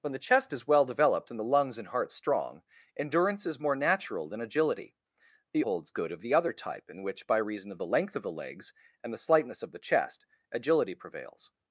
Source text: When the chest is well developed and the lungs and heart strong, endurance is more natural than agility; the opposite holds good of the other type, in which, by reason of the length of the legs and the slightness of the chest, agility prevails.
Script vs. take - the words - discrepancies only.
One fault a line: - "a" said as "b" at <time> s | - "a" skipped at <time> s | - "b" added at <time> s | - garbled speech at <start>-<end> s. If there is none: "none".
- "opposite" skipped at 5.6 s